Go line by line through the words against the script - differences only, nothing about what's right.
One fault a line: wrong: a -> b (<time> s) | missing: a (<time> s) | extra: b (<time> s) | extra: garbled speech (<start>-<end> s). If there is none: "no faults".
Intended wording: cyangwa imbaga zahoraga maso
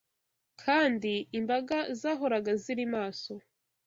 wrong: cyangwa -> kandi (0.6 s)
extra: ziri (2.6 s)